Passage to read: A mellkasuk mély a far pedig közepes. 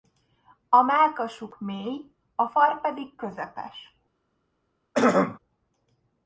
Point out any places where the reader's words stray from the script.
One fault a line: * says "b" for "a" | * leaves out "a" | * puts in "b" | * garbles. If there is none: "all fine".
all fine